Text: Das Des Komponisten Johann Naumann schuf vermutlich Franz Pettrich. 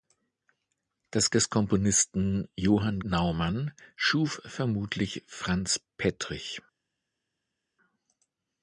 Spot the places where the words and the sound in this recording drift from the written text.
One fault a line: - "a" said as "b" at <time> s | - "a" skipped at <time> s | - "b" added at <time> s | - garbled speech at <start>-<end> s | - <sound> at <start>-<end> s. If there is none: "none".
none